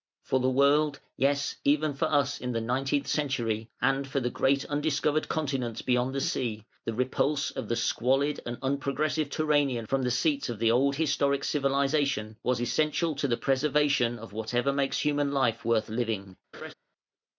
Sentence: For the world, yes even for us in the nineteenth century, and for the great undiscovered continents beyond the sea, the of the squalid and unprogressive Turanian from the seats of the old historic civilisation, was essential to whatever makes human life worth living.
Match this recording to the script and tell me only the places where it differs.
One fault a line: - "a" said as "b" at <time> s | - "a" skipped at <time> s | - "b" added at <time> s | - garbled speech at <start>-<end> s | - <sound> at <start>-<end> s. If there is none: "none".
- "repulse" added at 6.9 s
- "the preservation of" added at 13.3 s
- laugh at 16.5-16.7 s